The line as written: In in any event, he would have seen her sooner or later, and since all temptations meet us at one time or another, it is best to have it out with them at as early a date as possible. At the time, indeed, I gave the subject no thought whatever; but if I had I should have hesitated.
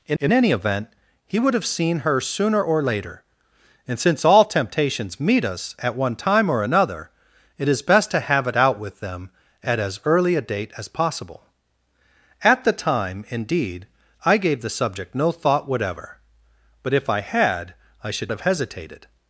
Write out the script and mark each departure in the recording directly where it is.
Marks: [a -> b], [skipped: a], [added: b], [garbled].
In in any event, he would have seen her sooner or later, and since all temptations meet us at one time or another, it is best to have it out with them at as early a date as possible. At the time, indeed, I gave the subject no thought whatever; but if I had I should have hesitated.